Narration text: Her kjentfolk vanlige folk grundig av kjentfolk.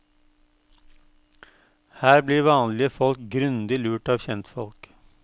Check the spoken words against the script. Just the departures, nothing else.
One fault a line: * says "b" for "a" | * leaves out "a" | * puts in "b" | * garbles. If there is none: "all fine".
* says "blir" for "kjentfolk"
* puts in "lurt"